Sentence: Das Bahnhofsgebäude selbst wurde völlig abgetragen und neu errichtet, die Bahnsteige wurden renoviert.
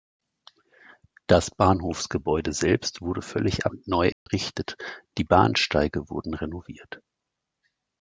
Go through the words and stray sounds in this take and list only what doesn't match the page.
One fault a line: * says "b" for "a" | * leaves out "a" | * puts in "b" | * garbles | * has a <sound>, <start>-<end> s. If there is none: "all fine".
* leaves out "abgetragen"
* has a dropout, 4.1-4.3 s